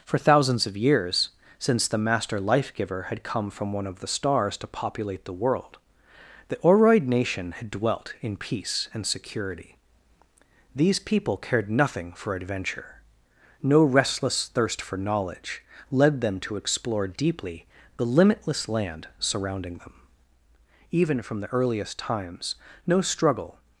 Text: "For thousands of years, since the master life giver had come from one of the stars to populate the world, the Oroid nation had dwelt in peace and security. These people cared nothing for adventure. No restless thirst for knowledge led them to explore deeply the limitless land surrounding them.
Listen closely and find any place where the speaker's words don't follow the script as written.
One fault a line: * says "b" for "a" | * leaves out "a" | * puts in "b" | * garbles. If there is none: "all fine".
* puts in "Even from the earliest times no struggle"